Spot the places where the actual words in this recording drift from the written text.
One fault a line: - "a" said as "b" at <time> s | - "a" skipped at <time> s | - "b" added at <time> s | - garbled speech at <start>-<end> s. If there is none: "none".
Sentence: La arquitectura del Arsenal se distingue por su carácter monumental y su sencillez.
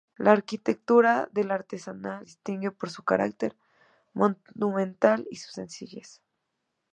- "se" skipped at 2.2 s